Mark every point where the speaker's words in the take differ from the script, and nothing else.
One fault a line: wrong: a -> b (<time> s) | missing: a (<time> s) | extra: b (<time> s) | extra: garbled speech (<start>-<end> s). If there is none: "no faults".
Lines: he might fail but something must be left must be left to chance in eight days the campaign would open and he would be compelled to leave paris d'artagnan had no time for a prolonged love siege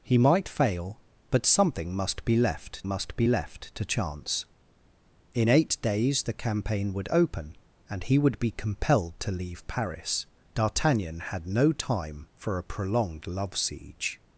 no faults